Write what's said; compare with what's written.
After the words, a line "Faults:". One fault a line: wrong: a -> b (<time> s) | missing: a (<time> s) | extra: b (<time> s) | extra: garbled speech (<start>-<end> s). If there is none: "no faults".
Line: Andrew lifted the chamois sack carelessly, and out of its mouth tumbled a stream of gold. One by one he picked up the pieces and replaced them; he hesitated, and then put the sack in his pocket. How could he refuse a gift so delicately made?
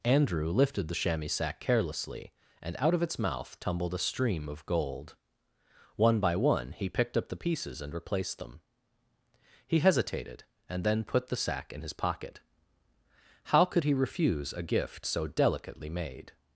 Andrew lifted the chamois sack carelessly, and out of its mouth tumbled a stream of gold. One by one he picked up the pieces and replaced them; he hesitated, and then put the sack in his pocket. How could he refuse a gift so delicately made?
Faults:
no faults